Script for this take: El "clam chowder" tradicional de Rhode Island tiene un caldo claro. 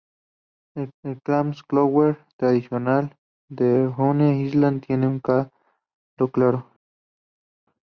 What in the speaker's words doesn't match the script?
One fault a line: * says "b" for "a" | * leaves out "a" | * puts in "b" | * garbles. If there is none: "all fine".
* puts in "el"